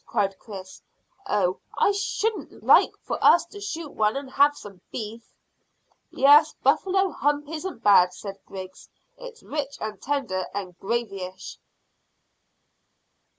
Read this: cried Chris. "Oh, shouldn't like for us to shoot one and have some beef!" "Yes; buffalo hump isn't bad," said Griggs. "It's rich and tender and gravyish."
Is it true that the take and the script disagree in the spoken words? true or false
false